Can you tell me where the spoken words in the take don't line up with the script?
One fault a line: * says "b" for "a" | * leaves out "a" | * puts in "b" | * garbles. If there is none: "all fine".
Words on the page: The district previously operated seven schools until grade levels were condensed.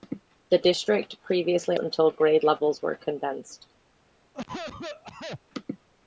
* leaves out "operated seven schools"